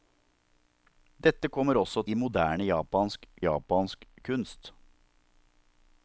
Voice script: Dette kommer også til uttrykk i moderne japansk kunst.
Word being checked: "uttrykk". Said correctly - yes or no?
no